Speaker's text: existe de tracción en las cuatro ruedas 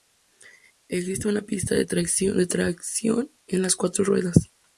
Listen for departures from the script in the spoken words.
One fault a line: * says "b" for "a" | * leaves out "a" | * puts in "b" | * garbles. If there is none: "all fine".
* puts in "una pista"